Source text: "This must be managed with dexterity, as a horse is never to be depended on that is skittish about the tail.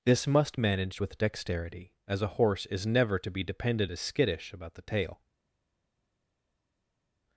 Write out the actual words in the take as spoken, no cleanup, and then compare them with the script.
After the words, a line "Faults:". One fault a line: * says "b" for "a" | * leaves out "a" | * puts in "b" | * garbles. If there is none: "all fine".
"This must managed with dexterity, as a horse is never to be depended is skittish about the tail.
Faults:
* leaves out "be"
* leaves out "on that"